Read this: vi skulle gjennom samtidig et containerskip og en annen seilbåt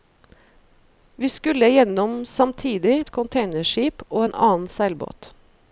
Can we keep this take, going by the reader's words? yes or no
yes